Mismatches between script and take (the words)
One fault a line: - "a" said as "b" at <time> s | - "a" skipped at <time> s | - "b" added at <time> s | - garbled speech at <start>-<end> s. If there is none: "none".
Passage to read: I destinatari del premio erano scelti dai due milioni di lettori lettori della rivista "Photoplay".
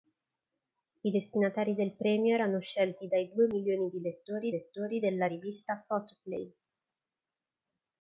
none